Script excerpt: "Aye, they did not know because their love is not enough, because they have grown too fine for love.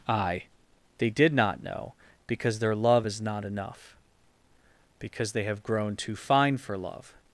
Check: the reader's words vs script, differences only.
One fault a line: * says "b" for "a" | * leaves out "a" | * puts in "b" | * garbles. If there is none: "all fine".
all fine